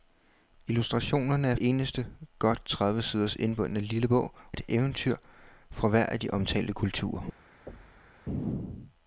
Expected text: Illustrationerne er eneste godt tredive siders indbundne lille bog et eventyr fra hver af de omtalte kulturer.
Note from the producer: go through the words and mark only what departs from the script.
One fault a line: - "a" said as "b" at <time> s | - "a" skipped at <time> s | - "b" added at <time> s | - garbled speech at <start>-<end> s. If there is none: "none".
none